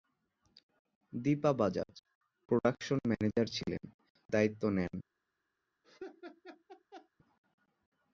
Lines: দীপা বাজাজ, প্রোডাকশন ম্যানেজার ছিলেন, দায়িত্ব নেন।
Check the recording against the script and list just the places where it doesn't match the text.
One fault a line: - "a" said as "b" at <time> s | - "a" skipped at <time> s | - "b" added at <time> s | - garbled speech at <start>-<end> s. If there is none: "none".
none